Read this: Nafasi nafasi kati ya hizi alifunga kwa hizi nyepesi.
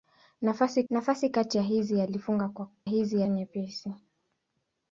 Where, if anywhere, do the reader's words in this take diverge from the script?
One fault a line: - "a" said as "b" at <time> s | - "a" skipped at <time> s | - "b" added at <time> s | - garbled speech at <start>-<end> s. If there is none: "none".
none